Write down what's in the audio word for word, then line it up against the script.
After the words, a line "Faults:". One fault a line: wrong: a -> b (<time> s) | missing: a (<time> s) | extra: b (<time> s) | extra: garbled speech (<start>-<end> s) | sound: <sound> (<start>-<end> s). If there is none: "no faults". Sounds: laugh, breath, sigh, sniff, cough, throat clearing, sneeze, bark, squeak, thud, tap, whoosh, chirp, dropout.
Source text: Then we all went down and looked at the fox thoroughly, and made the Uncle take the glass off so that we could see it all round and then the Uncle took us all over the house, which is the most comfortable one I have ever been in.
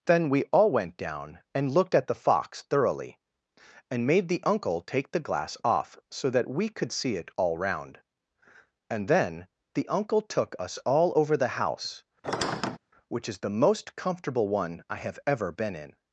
Then we all went down and looked at the fox thoroughly, and made the Uncle take the glass off so that we could see it all round and then the Uncle took us all over the house, which is the most comfortable one I have ever been in.
Faults:
sound: squeak (12.2-12.8 s)